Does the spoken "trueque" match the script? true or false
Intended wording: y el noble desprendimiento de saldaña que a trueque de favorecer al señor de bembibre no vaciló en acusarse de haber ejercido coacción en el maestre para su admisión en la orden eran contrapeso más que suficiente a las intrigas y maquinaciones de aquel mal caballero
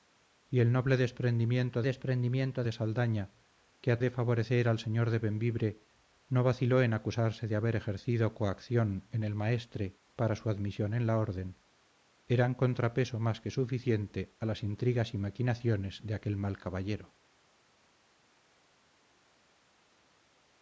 false